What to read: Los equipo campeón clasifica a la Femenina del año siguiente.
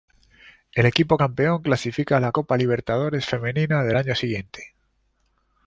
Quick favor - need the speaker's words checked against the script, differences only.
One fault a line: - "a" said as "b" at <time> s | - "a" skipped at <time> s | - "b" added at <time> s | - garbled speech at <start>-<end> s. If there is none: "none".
- "Los" said as "El" at 0.7 s
- "Copa Libertadores" added at 2.3 s